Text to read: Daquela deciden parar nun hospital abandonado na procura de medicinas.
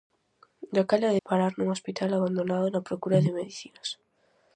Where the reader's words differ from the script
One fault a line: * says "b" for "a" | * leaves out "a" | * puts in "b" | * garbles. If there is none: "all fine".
* leaves out "deciden"